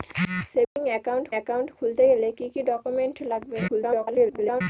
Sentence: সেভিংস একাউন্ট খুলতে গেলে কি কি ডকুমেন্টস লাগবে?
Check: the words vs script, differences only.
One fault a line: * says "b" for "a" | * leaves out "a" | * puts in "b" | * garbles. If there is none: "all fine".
* puts in "একাউন্ট"
* garbles